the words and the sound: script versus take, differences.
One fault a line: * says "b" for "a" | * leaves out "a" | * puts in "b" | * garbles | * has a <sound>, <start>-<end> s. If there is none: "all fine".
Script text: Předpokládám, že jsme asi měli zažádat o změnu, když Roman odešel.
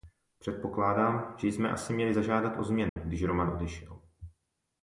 * has a dropout, 2.9-3.0 s